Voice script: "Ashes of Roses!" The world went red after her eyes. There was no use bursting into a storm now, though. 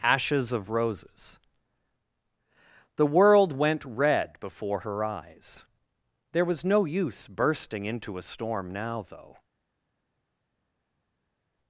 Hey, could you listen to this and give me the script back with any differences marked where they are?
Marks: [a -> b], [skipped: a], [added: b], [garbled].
"Ashes of Roses!" The world went red [after -> before] her eyes. There was no use bursting into a storm now, though.